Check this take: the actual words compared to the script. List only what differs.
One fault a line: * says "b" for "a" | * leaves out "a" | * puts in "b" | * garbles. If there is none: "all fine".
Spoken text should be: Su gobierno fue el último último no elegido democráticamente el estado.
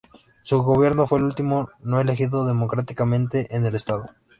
* leaves out "último"
* puts in "en"